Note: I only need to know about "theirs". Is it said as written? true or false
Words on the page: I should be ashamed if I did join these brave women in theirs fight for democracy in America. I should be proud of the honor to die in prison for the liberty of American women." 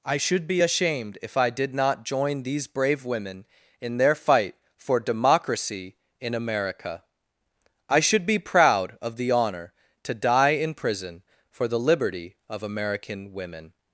false